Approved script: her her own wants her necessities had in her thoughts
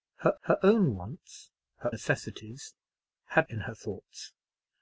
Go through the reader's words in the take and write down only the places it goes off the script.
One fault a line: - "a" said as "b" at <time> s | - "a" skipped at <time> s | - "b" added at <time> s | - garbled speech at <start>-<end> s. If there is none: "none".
none